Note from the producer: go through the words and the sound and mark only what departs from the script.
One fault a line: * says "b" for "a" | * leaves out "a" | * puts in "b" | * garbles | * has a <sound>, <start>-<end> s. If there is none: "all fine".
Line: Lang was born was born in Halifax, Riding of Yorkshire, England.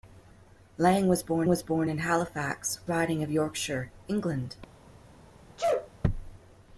* has a sneeze, 5.6-5.9 s